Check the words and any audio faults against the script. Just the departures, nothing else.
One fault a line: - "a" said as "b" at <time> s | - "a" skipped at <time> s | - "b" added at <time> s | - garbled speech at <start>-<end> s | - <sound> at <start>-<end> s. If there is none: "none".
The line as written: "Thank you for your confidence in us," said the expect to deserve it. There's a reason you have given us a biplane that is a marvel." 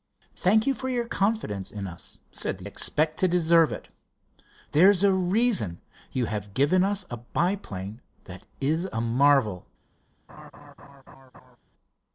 - laugh at 10.3-11.6 s